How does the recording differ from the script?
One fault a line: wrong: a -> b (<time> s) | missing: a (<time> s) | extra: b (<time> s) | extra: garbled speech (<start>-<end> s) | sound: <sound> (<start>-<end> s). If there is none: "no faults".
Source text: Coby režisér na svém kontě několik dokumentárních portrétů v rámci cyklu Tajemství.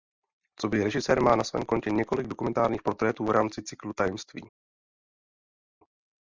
extra: má (1.2 s)